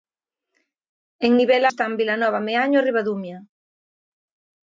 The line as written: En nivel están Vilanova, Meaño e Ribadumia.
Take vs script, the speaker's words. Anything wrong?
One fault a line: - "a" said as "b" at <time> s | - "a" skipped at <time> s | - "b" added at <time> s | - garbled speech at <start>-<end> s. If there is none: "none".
none